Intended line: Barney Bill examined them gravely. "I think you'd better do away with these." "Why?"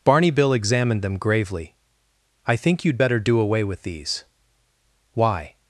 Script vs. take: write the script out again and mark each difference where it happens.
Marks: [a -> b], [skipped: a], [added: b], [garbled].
Barney Bill examined them gravely. "I think you'd better do away with these." "Why?"